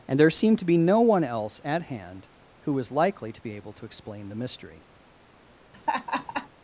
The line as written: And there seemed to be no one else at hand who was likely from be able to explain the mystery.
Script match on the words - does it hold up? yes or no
no